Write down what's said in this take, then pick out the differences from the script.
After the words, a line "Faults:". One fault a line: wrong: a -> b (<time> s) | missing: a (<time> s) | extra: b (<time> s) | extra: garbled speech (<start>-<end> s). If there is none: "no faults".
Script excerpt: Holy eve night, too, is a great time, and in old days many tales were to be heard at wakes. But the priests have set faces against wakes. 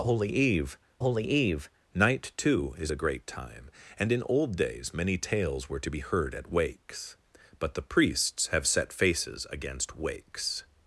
Holy eve holy eve night, too, is a great time, and in old days many tales were to be heard at wakes. But the priests have set faces against wakes.
Faults:
extra: holy eve (1.0 s)